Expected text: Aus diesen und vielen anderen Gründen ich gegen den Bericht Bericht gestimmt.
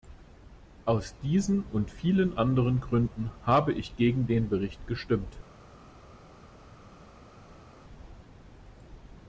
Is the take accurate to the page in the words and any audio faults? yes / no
no